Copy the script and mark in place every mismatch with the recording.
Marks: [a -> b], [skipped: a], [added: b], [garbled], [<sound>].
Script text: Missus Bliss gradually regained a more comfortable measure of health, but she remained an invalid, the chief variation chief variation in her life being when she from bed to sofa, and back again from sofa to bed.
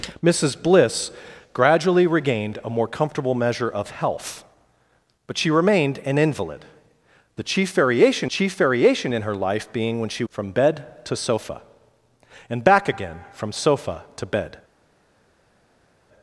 Missus Bliss gradually regained a more comfortable measure of health, but she remained an invalid, the chief variation chief variation in her life being when she from bed to sofa, and back again from sofa to bed.